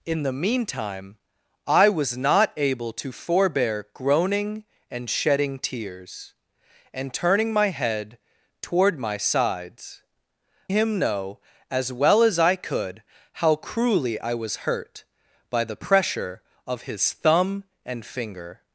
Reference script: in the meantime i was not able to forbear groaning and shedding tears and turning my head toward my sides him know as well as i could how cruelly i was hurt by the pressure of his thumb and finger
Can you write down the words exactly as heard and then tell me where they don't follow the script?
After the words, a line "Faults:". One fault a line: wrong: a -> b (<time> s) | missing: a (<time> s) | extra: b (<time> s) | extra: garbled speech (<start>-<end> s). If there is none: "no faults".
in the meantime i was not able to forbear groaning and shedding tears and turning my head toward my sides him know as well as i could how cruelly i was hurt by the pressure of his thumb and finger
Faults:
no faults